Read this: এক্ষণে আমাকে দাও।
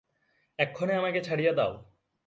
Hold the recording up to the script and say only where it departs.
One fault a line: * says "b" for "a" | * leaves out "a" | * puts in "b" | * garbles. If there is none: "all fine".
* puts in "ছাড়িয়া"